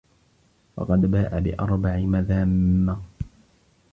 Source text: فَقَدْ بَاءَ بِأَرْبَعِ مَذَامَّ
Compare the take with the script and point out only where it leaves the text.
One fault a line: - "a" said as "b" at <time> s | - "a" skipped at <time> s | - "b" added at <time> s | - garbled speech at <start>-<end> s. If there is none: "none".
none